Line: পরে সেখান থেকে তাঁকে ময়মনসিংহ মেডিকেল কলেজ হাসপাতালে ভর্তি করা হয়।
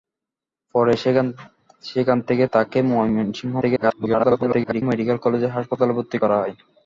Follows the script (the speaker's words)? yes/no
no